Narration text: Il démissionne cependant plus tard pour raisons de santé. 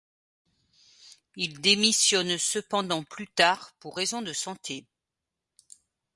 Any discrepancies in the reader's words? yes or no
no